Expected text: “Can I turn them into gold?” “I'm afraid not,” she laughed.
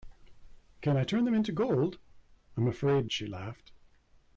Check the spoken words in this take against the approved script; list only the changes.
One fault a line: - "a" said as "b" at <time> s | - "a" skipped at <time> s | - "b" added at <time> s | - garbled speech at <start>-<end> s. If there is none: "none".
- "not" skipped at 3.1 s